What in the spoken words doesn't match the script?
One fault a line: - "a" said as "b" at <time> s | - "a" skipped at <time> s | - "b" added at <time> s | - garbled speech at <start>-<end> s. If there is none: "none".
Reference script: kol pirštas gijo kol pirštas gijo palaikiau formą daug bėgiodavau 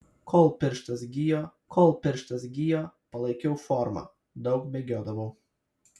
none